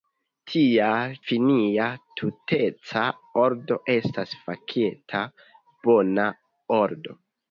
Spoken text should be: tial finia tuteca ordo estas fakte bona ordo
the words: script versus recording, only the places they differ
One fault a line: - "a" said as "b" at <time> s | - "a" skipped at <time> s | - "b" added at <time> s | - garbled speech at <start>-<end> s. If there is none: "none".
none